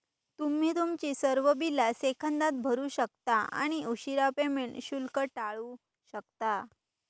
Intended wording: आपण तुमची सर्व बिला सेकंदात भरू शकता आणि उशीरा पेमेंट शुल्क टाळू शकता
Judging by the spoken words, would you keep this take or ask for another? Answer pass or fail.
fail